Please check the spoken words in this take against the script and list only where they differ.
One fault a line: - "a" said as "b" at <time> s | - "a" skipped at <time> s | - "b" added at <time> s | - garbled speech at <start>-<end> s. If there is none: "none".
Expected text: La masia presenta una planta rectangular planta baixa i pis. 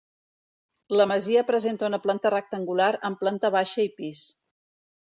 - "amb" added at 3.1 s